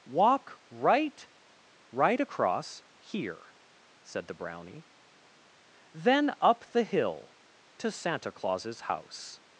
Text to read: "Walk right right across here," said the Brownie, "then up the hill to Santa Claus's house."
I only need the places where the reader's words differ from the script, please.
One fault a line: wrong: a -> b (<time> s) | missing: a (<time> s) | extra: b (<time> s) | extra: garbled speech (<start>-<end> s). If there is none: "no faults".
no faults